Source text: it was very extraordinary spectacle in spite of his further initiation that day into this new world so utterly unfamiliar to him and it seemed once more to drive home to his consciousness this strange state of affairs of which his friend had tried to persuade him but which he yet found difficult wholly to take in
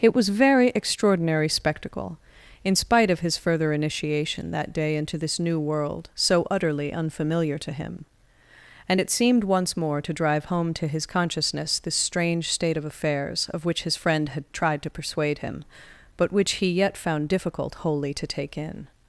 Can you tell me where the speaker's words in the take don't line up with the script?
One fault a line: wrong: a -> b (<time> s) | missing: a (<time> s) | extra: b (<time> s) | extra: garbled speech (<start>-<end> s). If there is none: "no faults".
no faults